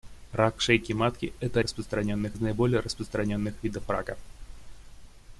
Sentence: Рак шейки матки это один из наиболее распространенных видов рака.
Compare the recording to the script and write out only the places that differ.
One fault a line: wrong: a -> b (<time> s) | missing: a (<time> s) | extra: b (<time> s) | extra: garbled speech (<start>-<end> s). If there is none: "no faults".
wrong: один -> распространенных (1.6 s)